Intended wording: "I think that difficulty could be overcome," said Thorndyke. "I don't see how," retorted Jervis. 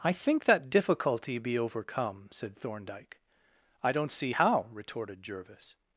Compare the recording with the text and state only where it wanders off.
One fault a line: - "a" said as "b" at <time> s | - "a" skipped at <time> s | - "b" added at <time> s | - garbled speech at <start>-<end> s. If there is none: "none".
- "could" skipped at 1.4 s